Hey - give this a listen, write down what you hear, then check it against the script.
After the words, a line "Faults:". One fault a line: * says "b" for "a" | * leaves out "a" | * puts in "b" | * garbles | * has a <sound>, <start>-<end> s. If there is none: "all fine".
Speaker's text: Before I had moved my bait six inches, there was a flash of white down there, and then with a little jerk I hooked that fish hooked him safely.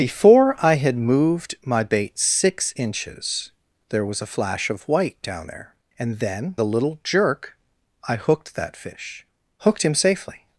Before I had moved my bait six inches, there was a flash of white down there, and then a little jerk I hooked that fish hooked him safely.
Faults:
* leaves out "with"